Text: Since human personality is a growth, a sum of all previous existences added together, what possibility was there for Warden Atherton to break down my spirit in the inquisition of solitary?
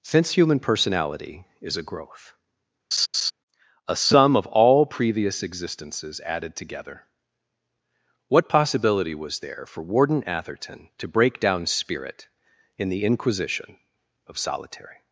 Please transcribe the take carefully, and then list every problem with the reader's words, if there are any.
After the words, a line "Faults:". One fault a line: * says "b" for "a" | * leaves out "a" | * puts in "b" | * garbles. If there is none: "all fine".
Since human personality is a growth, a sum of all previous existences added together, what possibility was there for Warden Atherton to break down spirit in the inquisition of solitary?
Faults:
* leaves out "my"